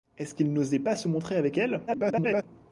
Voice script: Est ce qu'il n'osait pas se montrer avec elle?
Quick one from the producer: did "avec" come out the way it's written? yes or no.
yes